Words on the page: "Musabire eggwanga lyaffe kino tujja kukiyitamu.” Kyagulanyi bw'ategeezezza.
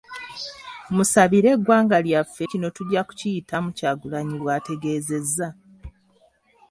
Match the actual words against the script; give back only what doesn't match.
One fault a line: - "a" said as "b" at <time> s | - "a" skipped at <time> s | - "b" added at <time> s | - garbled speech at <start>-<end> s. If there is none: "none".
none